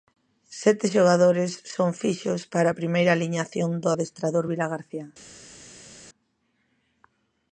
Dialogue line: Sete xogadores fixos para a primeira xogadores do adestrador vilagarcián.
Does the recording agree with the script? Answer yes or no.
no